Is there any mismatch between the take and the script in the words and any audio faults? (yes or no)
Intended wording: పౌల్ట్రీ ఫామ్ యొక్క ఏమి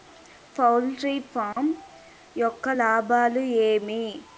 yes